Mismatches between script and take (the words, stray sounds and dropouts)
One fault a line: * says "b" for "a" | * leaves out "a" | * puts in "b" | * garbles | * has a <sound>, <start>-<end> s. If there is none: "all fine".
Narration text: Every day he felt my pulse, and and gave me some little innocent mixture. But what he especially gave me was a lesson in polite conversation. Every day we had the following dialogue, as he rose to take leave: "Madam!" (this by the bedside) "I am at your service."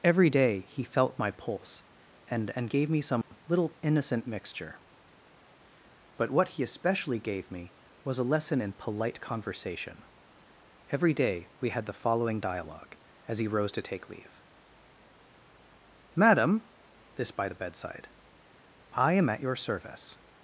* has a dropout, 3.2-3.3 s